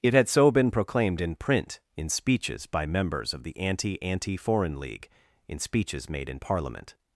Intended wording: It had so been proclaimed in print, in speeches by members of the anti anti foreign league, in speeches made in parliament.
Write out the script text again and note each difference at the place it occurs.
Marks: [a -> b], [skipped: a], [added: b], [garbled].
It had so been proclaimed in print, in speeches by members of the anti anti foreign league, in speeches made in parliament.